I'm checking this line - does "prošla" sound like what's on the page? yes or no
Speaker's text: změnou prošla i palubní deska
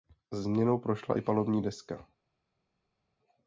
yes